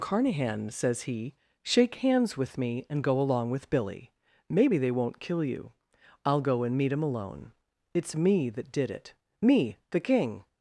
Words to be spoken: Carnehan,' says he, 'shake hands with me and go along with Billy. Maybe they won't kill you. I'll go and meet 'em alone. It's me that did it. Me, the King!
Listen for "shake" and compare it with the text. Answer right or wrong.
right